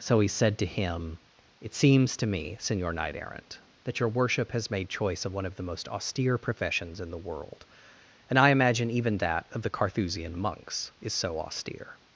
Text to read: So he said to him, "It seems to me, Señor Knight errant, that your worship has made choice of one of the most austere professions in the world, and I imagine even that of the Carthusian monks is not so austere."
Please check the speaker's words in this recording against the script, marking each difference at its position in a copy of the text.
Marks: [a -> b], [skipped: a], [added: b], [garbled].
So he said to him, "It seems to me, Señor Knight errant, that your worship has made choice of one of the most austere professions in the world, and I imagine even that of the Carthusian monks is [skipped: not] so austere."